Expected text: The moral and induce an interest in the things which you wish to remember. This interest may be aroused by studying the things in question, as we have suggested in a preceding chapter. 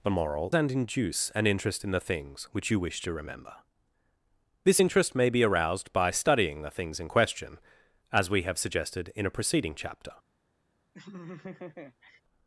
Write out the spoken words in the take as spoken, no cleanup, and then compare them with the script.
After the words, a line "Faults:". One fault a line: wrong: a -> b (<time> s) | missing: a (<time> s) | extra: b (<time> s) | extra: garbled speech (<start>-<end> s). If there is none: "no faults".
The moral and induce an interest in the things which you wish to remember. This interest may be aroused by studying the things in question, as we have suggested in a preceding chapter.
Faults:
no faults